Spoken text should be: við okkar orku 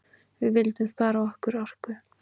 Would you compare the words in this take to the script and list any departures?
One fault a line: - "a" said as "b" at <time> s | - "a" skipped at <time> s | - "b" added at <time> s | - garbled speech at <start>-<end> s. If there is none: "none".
- "vildum spara" added at 0.6 s